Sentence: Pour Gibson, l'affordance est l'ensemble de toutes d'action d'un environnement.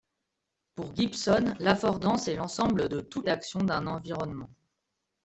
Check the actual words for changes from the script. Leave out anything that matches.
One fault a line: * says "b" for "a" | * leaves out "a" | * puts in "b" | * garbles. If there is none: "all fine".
all fine